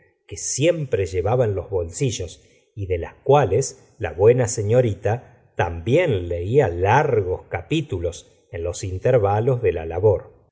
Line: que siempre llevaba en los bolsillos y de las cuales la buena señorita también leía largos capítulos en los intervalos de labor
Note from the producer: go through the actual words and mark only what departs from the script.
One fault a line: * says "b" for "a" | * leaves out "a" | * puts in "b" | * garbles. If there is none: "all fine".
* puts in "la"